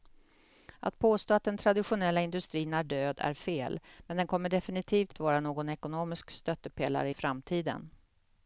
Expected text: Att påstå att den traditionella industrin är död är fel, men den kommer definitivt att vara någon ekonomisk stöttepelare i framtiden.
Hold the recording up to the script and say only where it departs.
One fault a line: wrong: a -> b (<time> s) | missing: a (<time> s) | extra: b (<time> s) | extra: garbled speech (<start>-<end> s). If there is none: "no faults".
no faults